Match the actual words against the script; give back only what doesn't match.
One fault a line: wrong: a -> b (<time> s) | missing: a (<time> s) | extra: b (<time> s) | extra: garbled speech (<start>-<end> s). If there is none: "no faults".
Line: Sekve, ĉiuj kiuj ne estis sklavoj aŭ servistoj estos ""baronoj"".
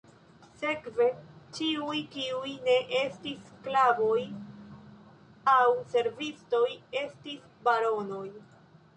wrong: estos -> estis (7.0 s)